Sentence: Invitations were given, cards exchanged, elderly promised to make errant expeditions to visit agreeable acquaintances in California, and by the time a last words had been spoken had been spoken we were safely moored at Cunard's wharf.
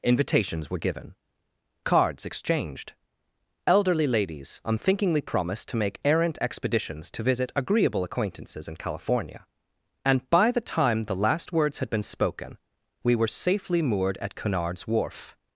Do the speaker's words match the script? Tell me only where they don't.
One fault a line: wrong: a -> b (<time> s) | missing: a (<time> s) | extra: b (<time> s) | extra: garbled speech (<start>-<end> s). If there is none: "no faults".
extra: ladies unthinkingly (4.1 s)
wrong: a -> the (11.0 s)
missing: had been spoken (12.6 s)